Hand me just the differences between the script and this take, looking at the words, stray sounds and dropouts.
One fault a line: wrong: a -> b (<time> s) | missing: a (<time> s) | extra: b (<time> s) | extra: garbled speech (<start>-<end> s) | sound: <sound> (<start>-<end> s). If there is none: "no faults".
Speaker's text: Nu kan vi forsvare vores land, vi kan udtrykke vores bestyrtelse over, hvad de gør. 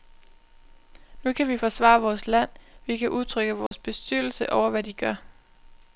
sound: dropout (3.7-3.7 s)